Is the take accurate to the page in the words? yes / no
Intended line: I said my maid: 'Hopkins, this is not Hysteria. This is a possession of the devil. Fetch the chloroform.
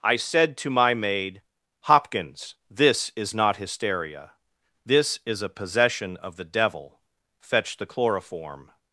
no